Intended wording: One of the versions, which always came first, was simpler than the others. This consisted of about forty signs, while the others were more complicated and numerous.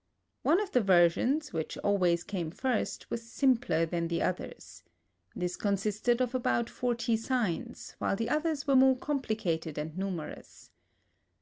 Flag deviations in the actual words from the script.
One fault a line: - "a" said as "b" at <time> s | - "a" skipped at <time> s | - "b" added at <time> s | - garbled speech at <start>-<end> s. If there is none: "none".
none